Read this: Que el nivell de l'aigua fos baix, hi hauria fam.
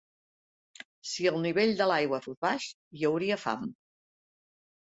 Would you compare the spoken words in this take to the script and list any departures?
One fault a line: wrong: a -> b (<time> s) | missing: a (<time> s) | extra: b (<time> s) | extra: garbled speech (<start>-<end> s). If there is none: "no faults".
wrong: Que -> Si (1.1 s)